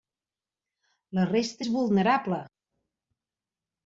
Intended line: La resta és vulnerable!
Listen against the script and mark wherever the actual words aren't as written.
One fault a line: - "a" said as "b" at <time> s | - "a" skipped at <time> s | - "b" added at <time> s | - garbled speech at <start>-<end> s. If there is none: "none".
none